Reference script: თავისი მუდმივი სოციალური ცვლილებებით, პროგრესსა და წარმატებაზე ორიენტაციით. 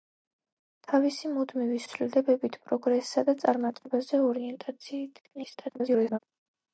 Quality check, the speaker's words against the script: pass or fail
fail